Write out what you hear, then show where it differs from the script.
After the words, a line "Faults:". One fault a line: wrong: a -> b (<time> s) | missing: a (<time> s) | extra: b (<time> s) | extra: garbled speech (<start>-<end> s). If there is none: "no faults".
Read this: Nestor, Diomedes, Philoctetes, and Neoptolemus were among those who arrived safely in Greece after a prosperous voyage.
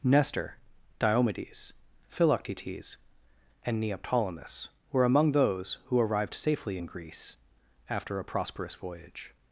Nestor, Diomedes, Philoctetes, and Neoptolemus were among those who arrived safely in Greece after a prosperous voyage.
Faults:
no faults